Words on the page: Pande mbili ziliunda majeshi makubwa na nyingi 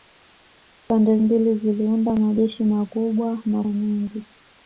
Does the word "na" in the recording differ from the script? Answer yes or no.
no